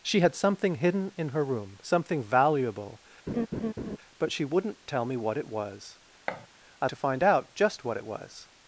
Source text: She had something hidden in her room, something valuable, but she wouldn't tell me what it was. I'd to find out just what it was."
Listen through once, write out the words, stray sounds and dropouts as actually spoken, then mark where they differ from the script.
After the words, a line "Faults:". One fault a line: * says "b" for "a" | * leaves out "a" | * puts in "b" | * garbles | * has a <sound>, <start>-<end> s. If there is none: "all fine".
She had something hidden in her room, something valuable, but she wouldn't tell me what it was. I'd to find out just what it was."
Faults:
* has a laugh, 3.3-4.0 s
* has a thud, 6.3-6.5 s